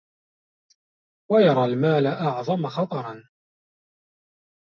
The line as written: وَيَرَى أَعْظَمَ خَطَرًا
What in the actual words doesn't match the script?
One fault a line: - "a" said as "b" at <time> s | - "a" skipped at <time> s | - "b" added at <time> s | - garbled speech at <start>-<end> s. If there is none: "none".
- "الْمَالَ" added at 1.6 s